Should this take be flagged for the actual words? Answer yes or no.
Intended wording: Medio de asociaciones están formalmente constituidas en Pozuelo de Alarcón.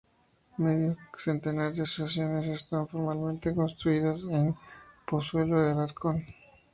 yes